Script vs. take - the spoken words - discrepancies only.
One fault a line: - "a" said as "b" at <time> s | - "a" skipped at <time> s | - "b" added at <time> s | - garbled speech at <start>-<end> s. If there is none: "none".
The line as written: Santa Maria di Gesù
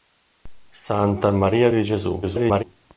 - garbled speech at 2.2-2.6 s